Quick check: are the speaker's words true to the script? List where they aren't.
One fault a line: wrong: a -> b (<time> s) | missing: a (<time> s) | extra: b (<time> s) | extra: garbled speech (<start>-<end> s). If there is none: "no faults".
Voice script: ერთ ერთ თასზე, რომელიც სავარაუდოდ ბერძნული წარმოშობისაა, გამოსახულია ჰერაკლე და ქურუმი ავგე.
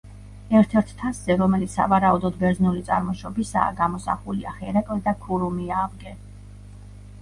no faults